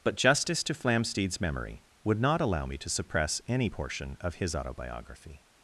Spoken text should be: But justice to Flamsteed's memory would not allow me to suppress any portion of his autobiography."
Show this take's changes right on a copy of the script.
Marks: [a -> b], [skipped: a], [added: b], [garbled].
But justice to Flamsteed's memory would not allow me to suppress any portion of his autobiography."